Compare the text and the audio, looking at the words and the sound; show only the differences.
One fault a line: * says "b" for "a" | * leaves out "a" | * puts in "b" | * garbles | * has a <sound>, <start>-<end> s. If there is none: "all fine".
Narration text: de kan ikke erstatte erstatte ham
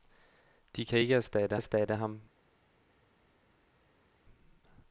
all fine